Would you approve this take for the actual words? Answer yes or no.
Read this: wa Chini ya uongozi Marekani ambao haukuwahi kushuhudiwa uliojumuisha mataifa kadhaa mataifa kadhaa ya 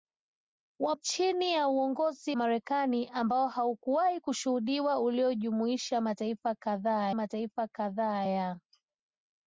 yes